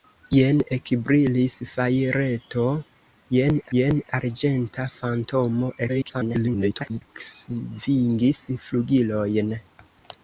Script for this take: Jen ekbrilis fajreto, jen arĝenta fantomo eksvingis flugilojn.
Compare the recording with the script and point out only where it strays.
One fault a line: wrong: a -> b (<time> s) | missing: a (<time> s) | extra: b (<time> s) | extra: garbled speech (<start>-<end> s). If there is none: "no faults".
extra: jen (3.8 s)
extra: garbled speech (5.9-7.0 s)